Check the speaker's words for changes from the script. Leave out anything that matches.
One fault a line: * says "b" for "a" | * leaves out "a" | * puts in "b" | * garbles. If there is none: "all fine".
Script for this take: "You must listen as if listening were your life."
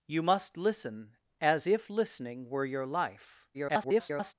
* garbles